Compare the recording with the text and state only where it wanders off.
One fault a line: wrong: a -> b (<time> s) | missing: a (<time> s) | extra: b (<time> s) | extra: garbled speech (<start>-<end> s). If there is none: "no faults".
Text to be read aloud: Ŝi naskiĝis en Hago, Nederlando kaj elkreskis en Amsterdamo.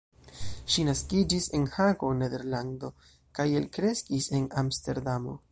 no faults